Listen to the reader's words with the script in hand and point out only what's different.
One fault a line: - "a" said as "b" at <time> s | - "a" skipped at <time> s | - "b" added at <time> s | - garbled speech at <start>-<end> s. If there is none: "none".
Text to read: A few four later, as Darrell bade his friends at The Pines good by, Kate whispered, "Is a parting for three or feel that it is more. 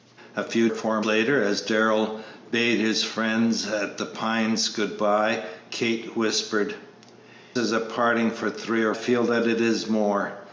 none